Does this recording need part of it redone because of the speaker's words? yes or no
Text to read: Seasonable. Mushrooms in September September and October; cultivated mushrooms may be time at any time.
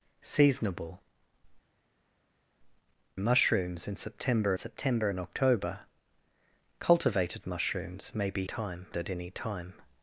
no